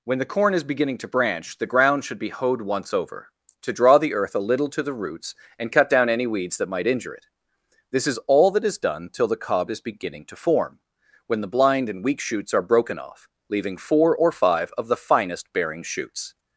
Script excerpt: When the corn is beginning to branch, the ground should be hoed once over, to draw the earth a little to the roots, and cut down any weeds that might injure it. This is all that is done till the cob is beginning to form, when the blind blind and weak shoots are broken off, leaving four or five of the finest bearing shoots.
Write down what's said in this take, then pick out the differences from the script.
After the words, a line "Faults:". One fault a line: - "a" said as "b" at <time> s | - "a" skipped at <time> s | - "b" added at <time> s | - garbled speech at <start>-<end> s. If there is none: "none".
When the corn is beginning to branch, the ground should be hoed once over, to draw the earth a little to the roots, and cut down any weeds that might injure it. This is all that is done till the cob is beginning to form, when the blind and weak shoots are broken off, leaving four or five of the finest bearing shoots.
Faults:
- "blind" skipped at 11.9 s